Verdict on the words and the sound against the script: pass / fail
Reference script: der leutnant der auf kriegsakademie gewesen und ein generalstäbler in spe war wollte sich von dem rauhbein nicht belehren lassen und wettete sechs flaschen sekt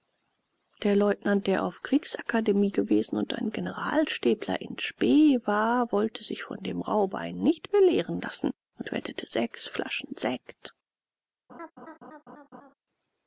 fail